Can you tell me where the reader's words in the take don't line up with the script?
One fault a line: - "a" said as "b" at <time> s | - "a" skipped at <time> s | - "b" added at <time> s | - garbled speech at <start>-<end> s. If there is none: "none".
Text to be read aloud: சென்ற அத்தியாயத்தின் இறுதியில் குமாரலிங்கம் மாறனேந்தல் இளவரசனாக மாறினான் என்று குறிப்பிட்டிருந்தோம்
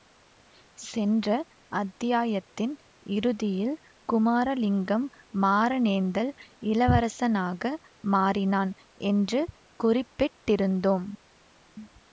none